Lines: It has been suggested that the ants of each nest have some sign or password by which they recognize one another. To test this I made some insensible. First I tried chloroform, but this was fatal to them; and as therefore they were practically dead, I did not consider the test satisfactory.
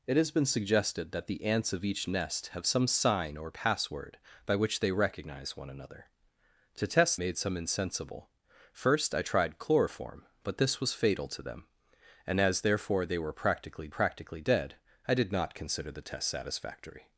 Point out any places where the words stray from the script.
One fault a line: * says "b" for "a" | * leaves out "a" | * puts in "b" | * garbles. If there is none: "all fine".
* leaves out "this I"
* puts in "practically"